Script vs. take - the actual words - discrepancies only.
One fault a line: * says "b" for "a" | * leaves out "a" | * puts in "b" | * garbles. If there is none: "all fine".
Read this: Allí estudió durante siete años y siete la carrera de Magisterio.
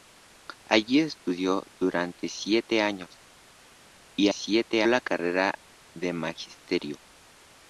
all fine